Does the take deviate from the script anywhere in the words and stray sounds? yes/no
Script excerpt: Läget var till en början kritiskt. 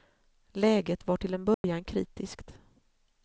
yes